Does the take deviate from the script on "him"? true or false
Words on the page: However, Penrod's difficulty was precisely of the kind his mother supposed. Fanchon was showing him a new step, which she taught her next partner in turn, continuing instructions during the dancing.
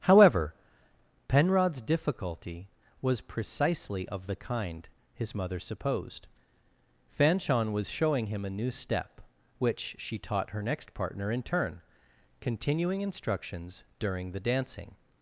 false